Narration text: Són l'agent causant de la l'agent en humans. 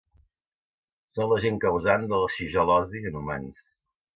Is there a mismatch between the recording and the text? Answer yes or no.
yes